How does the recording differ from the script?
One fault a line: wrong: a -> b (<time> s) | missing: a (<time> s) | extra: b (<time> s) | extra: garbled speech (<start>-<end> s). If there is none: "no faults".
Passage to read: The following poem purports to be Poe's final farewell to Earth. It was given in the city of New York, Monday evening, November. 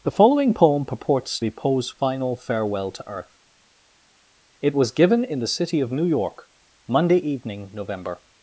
missing: to (1.4 s)